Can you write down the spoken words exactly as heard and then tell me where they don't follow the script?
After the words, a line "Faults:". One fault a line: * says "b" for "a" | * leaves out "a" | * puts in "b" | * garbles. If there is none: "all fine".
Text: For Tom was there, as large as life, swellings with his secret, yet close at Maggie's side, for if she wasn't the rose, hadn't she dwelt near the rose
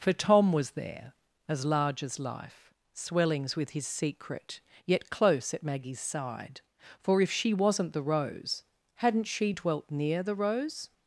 For Tom was there, as large as life, swellings with his secret, yet close at Maggie's side, for if she wasn't the rose, hadn't she dwelt near the rose
Faults:
all fine